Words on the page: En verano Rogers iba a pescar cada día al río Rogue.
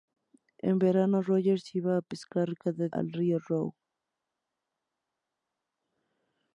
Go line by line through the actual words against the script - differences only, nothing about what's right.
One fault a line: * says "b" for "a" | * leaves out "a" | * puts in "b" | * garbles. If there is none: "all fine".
* leaves out "día"